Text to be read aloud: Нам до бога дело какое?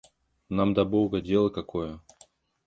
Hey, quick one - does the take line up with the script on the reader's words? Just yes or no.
yes